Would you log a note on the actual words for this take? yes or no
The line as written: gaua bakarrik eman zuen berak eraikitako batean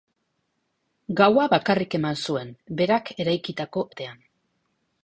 no